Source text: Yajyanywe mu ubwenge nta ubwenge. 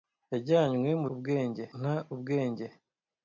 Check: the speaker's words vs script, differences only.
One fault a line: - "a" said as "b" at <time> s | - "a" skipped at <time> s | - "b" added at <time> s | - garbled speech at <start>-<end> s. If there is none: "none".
none